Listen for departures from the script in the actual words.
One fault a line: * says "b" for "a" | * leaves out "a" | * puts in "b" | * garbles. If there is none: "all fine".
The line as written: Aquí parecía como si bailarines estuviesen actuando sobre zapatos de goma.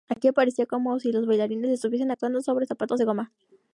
* puts in "los"